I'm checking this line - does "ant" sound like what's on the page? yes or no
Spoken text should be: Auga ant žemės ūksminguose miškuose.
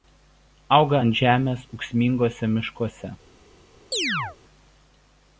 yes